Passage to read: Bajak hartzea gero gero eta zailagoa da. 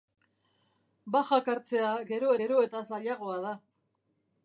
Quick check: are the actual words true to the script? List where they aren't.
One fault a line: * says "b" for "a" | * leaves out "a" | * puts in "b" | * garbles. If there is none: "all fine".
all fine